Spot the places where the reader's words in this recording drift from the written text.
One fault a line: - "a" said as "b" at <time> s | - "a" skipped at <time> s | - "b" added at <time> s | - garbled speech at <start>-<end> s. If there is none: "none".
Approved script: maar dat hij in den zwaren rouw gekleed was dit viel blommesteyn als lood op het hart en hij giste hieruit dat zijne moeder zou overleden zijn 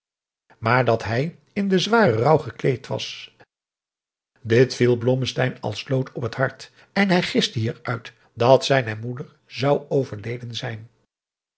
none